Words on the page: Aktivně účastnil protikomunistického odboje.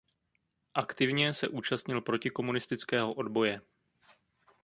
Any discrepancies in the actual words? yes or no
yes